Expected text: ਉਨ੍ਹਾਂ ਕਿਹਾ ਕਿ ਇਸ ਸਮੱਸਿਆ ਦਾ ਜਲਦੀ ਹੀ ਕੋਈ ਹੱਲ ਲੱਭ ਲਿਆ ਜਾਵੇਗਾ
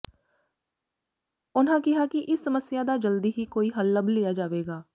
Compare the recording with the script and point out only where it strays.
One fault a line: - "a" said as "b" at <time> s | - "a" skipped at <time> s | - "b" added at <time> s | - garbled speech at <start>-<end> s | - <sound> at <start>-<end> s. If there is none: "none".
none